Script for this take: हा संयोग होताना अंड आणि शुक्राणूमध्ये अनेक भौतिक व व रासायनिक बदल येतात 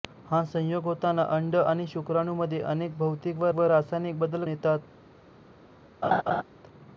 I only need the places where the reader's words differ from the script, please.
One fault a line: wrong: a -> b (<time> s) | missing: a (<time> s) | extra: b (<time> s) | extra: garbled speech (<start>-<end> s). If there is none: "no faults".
no faults